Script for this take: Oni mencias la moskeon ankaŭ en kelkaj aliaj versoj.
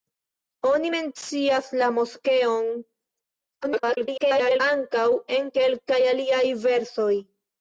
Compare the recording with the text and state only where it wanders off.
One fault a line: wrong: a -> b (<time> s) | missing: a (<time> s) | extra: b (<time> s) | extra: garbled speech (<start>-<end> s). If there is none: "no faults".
extra: garbled speech (3.6-4.6 s)